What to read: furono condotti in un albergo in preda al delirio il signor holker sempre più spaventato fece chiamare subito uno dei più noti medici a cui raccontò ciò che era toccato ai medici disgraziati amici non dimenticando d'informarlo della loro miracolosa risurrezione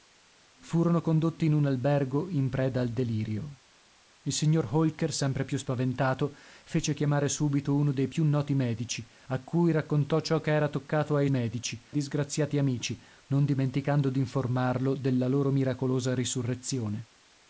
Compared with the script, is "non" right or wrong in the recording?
right